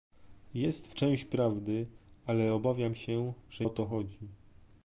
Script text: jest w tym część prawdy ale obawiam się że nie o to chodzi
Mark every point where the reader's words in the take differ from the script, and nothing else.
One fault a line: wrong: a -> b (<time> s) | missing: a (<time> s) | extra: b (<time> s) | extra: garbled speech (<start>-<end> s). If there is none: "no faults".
missing: tym (0.9 s)
missing: nie (3.7 s)